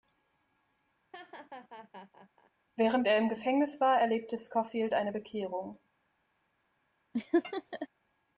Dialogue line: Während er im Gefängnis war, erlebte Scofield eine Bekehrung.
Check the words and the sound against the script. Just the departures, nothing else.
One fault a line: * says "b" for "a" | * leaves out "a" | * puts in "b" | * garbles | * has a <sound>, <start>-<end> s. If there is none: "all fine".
* has a laugh, 1.1-2.5 s
* has a laugh, 7.1-7.9 s